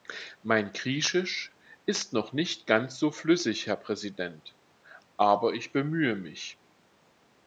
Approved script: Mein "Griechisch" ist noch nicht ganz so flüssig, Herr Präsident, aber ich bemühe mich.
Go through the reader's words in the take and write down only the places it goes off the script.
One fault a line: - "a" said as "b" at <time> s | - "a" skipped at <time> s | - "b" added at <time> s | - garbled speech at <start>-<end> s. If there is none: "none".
none